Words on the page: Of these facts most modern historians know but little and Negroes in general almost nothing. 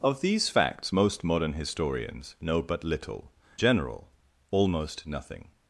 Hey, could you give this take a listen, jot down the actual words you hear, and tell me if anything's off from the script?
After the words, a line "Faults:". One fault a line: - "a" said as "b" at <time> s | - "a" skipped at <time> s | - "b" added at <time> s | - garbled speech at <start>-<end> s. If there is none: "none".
Of these facts most modern historians know but little general almost nothing.
Faults:
- "and Negroes in" skipped at 3.3 s